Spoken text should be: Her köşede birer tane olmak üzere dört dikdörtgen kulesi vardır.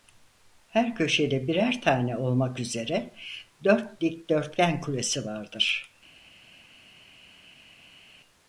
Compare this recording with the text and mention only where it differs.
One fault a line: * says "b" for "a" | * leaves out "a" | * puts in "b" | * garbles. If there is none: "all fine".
all fine